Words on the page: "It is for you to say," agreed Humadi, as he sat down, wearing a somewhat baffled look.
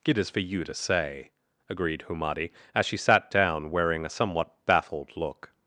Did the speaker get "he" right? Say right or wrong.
wrong